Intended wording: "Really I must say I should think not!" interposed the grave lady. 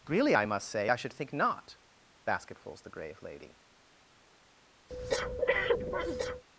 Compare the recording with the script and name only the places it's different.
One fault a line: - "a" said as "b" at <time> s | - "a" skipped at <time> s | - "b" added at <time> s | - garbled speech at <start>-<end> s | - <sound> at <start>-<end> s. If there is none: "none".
- "interposed" said as "basketfuls" at 2.2 s
- breath at 4.9-6.4 s